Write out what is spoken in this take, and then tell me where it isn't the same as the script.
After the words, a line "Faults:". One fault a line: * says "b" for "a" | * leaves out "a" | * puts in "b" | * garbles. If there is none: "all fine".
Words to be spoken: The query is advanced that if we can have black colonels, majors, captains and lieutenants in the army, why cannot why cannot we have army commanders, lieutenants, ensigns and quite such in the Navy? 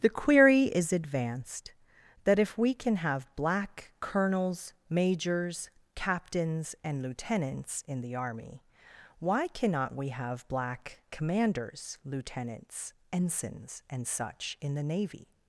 The query is advanced that if we can have black colonels, majors, captains and lieutenants in the army, why cannot we have black commanders, lieutenants, ensigns and such in the Navy?
Faults:
* leaves out "why cannot"
* says "black" for "army"
* leaves out "quite"